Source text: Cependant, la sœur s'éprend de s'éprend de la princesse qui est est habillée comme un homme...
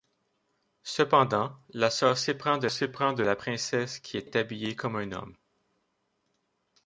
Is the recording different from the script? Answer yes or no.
no